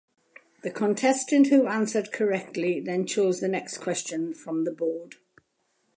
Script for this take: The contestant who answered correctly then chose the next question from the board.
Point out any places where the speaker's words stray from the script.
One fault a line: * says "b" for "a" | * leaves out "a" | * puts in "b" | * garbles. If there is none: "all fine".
all fine